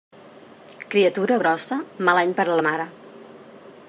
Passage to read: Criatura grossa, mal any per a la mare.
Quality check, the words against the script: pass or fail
pass